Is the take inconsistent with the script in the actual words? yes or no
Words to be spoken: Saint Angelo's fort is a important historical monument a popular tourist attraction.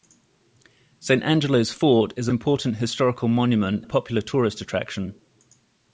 no